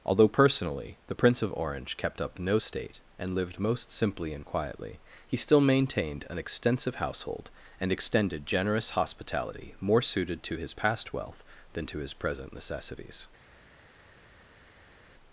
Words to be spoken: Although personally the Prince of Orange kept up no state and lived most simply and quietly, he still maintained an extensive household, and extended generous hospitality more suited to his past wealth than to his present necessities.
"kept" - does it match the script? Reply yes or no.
yes